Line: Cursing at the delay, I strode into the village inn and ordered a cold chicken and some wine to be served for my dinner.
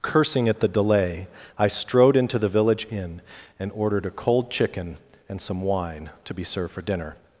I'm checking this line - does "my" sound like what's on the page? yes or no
no